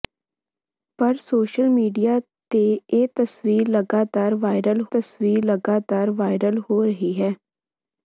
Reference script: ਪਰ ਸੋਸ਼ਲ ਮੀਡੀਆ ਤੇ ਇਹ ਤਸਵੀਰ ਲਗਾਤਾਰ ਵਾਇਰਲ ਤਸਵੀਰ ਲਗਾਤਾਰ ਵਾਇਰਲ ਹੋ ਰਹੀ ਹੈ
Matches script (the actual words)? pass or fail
pass